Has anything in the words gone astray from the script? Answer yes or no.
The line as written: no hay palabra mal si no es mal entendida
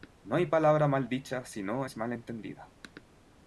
yes